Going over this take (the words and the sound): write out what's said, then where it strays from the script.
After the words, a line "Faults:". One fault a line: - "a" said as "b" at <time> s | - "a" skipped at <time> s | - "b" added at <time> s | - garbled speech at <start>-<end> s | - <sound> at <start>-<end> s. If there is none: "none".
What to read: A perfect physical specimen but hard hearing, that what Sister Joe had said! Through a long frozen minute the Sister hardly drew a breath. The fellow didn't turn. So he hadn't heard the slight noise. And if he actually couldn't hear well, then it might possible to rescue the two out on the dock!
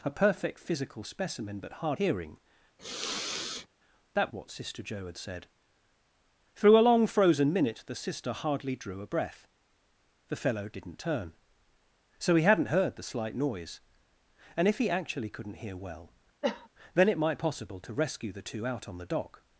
A perfect physical specimen but hard hearing, that what Sister Joe had said! Through a long frozen minute the Sister hardly drew a breath. The fellow didn't turn. So he hadn't heard the slight noise. And if he actually couldn't hear well, then it might possible to rescue the two out on the dock!
Faults:
- sniff at 2.8-3.7 s
- cough at 16.4-16.7 s